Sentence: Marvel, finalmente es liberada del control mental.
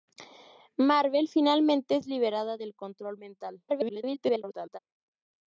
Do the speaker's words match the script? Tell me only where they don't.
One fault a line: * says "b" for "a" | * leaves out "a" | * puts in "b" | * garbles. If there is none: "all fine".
* garbles